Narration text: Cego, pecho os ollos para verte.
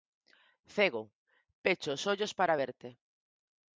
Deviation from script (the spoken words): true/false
false